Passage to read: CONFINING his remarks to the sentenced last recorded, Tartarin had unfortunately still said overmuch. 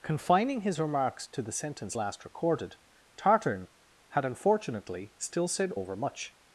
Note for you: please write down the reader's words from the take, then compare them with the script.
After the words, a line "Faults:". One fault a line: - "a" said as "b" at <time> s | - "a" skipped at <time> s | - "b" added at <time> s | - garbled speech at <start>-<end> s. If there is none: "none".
CONFINING his remarks to the sentence last recorded, Tartarin had unfortunately still said overmuch.
Faults:
- "sentenced" said as "sentence" at 1.5 s